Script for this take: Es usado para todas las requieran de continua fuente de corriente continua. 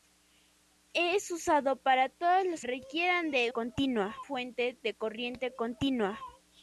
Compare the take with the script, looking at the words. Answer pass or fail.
pass